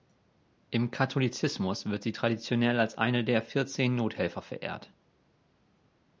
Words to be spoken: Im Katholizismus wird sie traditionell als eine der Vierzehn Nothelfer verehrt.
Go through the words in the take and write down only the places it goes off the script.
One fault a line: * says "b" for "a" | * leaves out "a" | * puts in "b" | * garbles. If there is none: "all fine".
all fine